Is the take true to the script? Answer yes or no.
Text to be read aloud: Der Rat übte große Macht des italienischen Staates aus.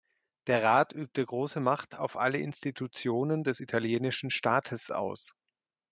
no